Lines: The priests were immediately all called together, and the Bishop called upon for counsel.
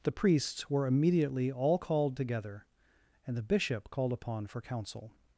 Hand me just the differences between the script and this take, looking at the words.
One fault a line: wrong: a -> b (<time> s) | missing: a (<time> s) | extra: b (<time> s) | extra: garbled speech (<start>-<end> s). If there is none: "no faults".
no faults